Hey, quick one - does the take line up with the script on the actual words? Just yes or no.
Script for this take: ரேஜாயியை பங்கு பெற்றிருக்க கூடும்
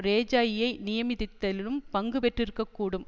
no